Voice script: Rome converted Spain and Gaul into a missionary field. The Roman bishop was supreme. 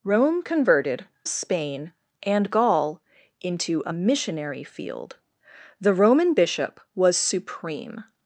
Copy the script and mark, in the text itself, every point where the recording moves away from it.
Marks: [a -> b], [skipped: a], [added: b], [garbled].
Rome converted Spain and Gaul into a missionary field. The Roman bishop was supreme.